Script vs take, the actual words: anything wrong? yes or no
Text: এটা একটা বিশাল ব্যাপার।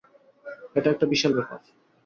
no